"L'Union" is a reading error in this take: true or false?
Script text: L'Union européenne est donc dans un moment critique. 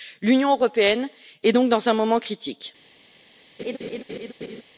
false